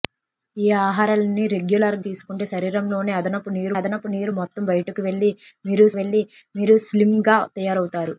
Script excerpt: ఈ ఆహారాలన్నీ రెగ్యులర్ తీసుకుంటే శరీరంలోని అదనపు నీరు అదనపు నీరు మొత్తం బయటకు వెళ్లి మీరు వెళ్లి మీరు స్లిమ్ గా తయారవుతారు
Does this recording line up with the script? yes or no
yes